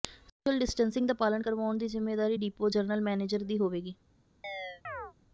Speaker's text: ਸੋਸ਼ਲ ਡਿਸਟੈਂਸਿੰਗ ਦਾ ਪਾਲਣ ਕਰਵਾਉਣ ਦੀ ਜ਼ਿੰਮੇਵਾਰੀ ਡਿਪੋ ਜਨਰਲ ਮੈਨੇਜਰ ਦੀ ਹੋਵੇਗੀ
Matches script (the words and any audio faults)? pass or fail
fail